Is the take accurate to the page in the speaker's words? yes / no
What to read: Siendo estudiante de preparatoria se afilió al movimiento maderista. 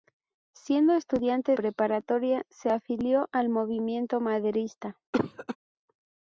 no